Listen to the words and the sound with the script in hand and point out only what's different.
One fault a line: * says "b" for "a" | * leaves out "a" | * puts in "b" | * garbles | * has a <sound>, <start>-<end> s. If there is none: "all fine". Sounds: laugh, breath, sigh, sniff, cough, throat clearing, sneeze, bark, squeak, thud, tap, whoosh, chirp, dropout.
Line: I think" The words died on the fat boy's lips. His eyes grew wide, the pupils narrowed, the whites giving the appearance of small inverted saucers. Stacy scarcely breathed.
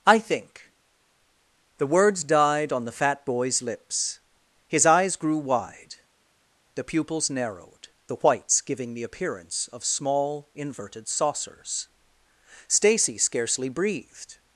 all fine